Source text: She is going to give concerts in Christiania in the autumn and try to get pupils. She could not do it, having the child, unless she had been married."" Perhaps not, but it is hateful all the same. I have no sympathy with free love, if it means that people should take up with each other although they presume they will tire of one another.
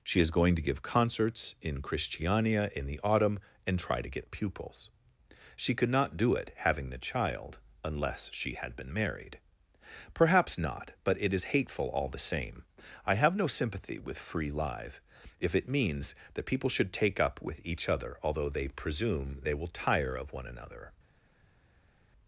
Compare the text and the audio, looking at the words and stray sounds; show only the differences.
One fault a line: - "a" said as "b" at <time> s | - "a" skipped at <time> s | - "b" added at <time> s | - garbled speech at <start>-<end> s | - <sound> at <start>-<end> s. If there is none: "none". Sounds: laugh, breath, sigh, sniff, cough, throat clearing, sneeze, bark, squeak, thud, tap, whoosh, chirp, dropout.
- "love" said as "live" at 14.5 s